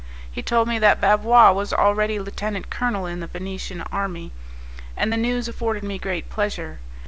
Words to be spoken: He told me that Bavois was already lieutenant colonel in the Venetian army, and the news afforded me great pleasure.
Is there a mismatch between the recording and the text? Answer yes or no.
no